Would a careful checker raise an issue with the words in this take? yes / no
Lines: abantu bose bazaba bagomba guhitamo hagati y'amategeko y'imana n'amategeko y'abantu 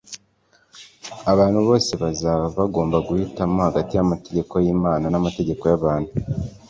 no